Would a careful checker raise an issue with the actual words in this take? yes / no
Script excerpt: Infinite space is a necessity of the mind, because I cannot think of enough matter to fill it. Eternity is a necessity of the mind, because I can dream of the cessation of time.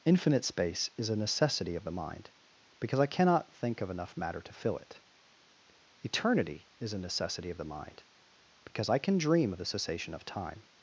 no